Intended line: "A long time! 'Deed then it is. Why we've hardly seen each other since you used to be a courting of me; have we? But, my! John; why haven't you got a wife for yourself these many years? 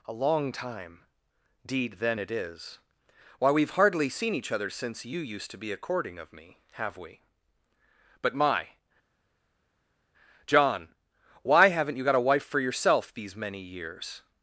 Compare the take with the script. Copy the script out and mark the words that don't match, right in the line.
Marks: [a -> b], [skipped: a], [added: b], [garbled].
"A long time! 'Deed then it is. Why we've hardly seen each other since you used to be a courting of me; have we? But, my! John; why haven't you got a wife for yourself these many years?